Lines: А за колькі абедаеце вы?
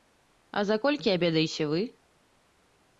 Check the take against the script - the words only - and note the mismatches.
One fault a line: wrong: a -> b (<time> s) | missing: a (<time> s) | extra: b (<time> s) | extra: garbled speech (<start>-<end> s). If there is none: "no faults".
no faults